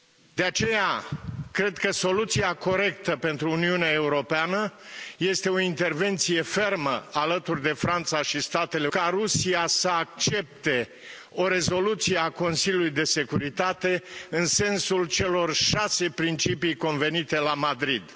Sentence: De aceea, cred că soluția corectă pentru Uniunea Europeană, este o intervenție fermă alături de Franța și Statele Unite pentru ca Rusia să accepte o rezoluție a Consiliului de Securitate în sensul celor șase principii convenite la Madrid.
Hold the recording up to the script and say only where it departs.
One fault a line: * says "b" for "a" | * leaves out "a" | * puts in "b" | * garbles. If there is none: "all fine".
* leaves out "Unite pentru"